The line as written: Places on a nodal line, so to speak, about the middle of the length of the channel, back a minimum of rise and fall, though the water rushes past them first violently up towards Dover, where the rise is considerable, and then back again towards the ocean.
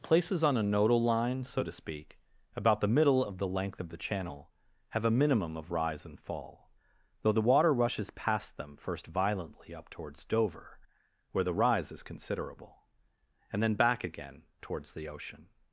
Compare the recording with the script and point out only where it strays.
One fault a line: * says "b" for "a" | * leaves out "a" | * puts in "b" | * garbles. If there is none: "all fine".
* says "have" for "back"